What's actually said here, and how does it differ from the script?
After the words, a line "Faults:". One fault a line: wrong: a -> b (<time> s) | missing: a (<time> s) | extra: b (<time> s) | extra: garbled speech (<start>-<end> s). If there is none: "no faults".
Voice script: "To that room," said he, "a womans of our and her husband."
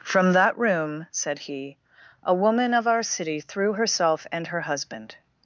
"From that room," said he, "a woman of our city threw herself and her husband."
Faults:
wrong: To -> From (0.0 s)
wrong: womans -> woman (2.3 s)
extra: city threw herself (3.0 s)